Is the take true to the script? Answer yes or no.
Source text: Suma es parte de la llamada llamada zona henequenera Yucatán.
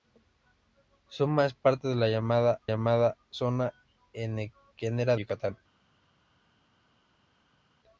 yes